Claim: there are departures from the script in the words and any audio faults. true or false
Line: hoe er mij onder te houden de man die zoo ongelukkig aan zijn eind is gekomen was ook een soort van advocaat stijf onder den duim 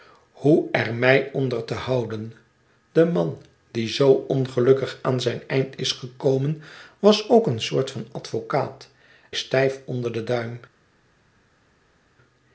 false